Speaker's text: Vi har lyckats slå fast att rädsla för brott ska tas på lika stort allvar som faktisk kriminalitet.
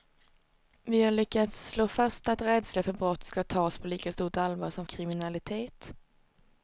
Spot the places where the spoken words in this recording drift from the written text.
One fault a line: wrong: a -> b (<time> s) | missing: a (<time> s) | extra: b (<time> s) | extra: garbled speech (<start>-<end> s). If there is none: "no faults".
missing: faktisk (4.8 s)